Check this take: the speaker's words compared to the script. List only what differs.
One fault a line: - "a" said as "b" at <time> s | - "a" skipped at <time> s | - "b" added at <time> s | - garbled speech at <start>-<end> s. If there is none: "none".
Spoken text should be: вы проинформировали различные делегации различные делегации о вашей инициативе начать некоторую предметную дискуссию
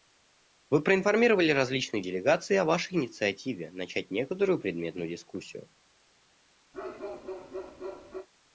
- "различные делегации" skipped at 2.6 s